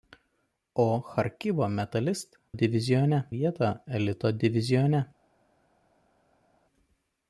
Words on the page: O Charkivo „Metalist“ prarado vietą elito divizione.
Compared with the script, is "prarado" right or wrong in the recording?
wrong